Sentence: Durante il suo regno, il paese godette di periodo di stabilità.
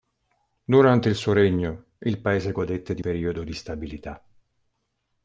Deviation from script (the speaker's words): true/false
false